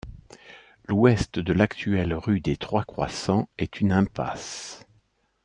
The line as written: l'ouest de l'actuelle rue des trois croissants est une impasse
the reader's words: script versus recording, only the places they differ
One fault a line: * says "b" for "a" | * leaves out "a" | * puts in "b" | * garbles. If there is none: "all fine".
all fine